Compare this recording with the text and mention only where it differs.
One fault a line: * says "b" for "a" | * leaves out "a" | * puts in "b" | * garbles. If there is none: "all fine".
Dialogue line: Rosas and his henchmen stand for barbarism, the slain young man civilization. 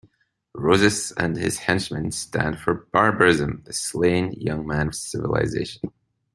all fine